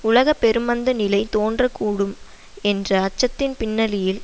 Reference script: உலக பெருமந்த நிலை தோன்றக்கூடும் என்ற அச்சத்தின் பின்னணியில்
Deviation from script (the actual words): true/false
false